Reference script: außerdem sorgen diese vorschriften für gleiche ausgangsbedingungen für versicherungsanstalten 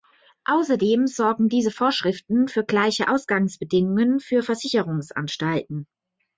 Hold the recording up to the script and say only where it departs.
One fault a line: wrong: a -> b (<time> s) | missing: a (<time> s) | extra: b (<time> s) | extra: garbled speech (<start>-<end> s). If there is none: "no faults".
no faults